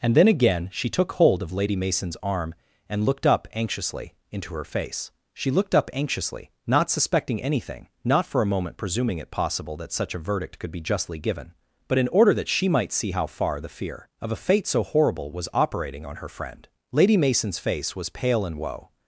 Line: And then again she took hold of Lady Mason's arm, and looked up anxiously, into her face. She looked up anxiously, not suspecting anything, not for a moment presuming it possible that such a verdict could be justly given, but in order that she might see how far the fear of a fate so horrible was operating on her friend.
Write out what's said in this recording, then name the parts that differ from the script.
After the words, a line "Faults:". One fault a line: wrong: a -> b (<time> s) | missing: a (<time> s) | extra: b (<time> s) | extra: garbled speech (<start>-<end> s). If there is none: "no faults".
And then again she took hold of Lady Mason's arm, and looked up anxiously, into her face. She looked up anxiously, not suspecting anything, not for a moment presuming it possible that such a verdict could be justly given, but in order that she might see how far the fear of a fate so horrible was operating on her friend. Lady Mason's face was pale and woe
Faults:
extra: Lady Mason's face was pale and woe (16.9 s)